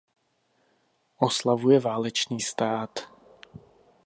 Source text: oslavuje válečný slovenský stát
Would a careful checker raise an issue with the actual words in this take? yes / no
yes